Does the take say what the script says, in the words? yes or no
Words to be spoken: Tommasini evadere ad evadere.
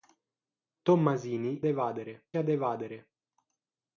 yes